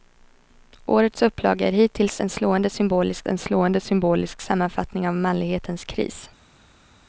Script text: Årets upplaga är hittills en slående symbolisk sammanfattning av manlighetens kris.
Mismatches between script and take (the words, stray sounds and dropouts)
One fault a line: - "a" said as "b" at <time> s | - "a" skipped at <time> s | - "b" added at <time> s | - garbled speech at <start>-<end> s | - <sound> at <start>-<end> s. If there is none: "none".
- "en slående symbolisk" added at 3.3 s